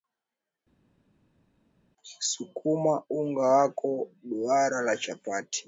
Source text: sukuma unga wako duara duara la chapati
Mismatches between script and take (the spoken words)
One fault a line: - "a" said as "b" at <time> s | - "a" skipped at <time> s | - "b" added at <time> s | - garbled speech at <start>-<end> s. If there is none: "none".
- "duara" skipped at 4.8 s